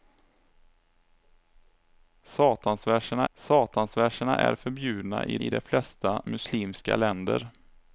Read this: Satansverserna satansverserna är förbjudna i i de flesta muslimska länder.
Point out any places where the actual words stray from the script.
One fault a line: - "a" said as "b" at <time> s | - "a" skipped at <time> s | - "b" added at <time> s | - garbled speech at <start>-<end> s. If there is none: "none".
none